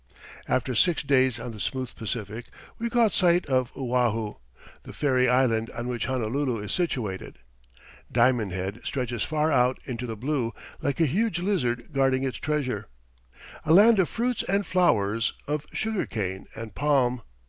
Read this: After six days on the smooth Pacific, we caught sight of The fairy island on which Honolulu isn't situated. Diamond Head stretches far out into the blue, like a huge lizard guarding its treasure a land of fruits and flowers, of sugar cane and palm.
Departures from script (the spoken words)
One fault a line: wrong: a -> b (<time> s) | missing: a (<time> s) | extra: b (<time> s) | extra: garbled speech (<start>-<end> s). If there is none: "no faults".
extra: Oahu (3.8 s)
wrong: isn't -> is (6.6 s)